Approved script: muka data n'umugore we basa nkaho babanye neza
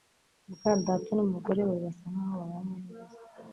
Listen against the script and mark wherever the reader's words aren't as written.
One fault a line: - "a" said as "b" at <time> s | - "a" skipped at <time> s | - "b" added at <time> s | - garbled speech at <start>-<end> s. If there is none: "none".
none